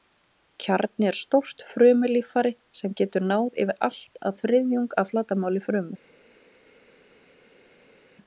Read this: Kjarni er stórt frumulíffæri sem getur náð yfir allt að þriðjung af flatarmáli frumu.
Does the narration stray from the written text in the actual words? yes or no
no